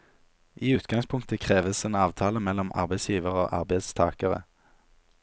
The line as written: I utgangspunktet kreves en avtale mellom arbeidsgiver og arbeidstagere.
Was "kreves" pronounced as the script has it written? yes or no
yes